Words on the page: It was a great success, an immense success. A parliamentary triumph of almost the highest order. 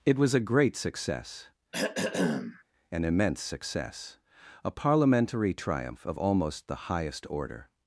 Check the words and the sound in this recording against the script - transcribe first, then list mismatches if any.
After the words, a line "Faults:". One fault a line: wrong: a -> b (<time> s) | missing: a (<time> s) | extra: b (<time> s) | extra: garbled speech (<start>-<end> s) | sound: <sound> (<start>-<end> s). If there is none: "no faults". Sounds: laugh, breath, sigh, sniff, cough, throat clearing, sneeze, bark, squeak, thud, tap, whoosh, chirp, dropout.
It was a great success, an immense success. A parliamentary triumph of almost the highest order.
Faults:
sound: throat clearing (1.7-2.6 s)